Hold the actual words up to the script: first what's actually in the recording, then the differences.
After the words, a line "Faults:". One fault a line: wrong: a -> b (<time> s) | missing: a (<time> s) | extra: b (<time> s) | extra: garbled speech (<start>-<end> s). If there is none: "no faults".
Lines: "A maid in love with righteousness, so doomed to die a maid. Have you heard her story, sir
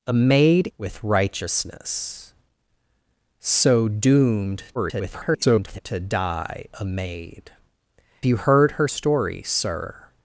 "A maid with righteousness, so doomed [garbled] to die a maid. You heard her story, sir
Faults:
missing: in love (0.7 s)
extra: garbled speech (4.7-5.8 s)
missing: Have (7.5 s)